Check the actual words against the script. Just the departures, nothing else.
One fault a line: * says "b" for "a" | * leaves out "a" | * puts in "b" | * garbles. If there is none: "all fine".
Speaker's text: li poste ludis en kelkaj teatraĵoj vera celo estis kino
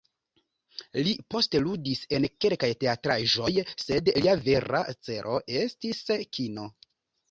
* puts in "sed lia"